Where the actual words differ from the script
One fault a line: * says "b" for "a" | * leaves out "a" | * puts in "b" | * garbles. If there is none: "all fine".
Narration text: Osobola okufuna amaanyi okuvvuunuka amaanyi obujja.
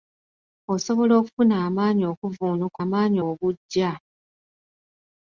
all fine